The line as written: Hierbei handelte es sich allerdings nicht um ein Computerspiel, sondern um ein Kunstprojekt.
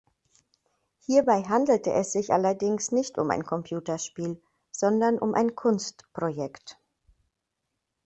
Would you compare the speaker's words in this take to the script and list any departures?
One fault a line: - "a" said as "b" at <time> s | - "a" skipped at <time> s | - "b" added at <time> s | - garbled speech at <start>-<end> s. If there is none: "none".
none